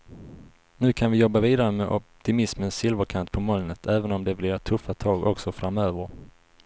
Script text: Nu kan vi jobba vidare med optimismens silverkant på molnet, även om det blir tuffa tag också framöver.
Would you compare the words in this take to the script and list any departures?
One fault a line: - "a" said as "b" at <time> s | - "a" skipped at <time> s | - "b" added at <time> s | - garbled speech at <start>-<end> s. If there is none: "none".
none